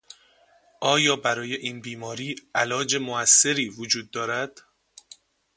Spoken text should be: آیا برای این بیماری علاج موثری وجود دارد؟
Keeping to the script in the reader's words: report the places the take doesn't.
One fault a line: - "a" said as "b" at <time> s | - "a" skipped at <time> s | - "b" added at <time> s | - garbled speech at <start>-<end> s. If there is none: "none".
none